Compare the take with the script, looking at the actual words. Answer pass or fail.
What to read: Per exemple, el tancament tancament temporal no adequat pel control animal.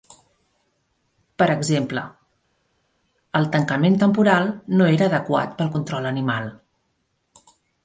fail